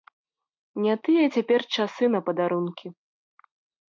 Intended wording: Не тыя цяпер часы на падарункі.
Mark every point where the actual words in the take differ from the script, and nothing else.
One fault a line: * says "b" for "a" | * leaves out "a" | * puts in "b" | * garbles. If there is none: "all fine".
all fine